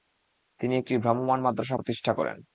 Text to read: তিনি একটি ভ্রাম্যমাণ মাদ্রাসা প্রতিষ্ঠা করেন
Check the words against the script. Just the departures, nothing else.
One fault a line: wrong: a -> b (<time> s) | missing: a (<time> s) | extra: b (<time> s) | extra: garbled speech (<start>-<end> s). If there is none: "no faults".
no faults